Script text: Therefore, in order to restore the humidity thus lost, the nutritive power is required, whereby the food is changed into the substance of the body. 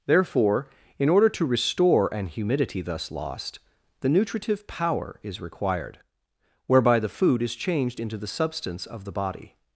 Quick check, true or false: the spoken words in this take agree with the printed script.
false